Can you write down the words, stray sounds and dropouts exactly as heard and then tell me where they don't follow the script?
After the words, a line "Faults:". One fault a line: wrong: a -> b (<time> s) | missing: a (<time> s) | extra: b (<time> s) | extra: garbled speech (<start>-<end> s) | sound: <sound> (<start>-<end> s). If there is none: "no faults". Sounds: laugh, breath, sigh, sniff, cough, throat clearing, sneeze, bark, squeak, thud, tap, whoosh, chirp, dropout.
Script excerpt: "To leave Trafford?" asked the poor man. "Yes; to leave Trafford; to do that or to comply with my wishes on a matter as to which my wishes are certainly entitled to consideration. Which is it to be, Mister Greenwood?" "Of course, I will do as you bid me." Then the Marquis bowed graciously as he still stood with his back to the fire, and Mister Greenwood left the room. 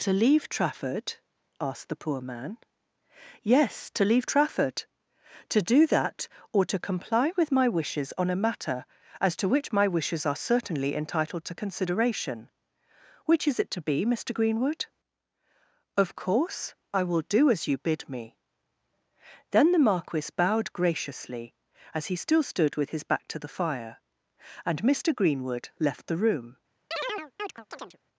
"To leave Trafford?" asked the poor man. "Yes; to leave Trafford; to do that or to comply with my wishes on a matter as to which my wishes are certainly entitled to consideration. Which is it to be, Mister Greenwood?" "Of course, I will do as you bid me." Then the Marquis bowed graciously as he still stood with his back to the fire, and Mister Greenwood left the room.
Faults:
sound: chirp (26.9-28.0 s)